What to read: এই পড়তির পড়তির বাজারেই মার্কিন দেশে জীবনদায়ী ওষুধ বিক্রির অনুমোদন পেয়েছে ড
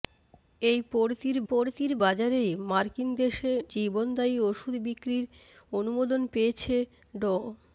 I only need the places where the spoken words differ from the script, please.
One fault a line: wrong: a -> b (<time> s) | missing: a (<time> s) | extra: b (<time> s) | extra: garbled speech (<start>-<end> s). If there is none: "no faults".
no faults